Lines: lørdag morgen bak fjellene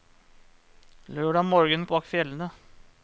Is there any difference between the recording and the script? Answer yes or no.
no